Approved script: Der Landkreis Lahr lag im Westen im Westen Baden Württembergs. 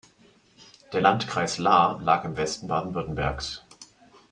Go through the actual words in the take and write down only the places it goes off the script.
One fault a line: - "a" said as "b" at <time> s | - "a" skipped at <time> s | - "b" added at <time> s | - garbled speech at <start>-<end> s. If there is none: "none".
- "im Westen" skipped at 2.7 s